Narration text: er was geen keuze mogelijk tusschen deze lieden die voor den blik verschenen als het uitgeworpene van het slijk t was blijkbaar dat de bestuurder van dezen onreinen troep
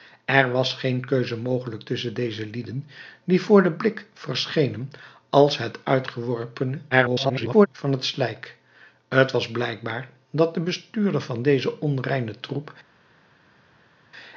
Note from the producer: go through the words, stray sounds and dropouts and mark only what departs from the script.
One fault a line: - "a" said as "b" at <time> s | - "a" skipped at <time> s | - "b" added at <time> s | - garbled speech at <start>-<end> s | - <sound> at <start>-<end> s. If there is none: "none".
- garbled speech at 6.9-7.7 s